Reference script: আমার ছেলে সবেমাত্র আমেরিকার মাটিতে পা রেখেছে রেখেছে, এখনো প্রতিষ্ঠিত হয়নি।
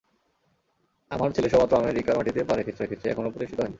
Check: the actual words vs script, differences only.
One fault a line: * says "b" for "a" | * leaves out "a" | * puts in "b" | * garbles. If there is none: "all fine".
all fine